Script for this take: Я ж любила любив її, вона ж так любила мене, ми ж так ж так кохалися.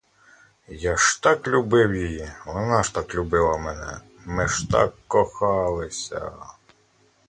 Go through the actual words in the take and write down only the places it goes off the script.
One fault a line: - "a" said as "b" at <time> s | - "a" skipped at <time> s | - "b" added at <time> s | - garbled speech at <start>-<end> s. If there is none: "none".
- "любила" said as "так" at 1.2 s
- "ж так" skipped at 4.9 s